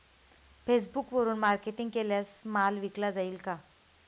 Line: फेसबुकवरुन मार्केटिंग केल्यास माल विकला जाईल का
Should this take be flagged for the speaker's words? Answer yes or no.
no